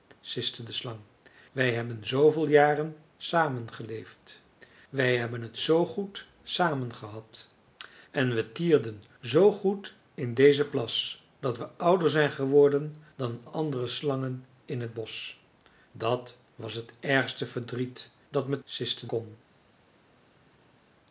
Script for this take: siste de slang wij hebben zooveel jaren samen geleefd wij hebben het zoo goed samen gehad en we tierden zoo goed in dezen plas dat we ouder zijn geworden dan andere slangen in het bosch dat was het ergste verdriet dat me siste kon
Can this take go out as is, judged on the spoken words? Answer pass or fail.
pass